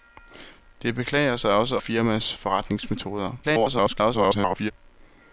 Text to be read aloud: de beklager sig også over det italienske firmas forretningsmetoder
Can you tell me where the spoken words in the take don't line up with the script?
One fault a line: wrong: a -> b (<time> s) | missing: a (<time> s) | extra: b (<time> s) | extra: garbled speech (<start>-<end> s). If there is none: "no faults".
missing: over det italienske (1.8 s)
extra: garbled speech (3.4-4.7 s)